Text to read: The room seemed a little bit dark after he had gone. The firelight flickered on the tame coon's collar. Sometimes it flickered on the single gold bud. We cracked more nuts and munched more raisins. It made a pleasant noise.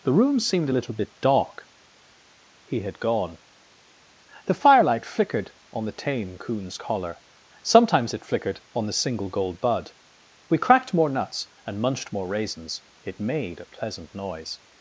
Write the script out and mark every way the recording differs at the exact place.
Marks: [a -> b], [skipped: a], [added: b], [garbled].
The room seemed a little bit dark [skipped: after] he had gone. The firelight flickered on the tame coon's collar. Sometimes it flickered on the single gold bud. We cracked more nuts and munched more raisins. It made a pleasant noise.